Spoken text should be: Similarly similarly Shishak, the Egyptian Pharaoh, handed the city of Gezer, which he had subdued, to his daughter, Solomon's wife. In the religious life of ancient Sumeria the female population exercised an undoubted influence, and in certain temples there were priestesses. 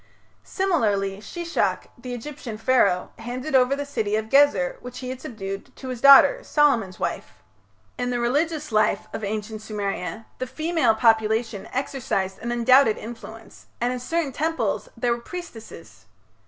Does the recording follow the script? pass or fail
fail